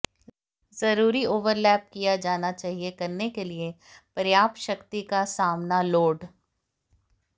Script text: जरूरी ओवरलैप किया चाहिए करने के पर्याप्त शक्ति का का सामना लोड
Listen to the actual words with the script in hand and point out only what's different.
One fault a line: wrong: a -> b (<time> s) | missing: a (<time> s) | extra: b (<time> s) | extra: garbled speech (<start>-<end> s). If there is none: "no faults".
extra: जाना (2.2 s)
extra: लिए (3.4 s)
missing: का (5.2 s)